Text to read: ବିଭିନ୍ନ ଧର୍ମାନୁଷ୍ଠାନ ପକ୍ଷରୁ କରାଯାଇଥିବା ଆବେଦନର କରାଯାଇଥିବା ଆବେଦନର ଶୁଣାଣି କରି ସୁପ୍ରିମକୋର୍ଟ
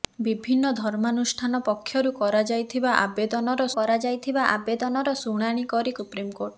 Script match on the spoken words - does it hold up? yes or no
yes